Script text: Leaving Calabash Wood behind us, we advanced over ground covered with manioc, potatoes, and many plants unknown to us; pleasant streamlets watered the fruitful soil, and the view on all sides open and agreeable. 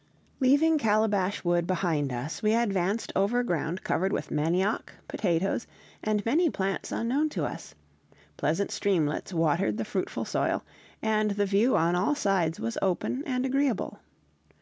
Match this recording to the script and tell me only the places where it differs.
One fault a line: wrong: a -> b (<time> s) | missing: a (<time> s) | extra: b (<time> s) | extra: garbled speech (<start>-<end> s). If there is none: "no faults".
extra: was (12.6 s)